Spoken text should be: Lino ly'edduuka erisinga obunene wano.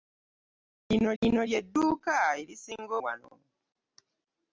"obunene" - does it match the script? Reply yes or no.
no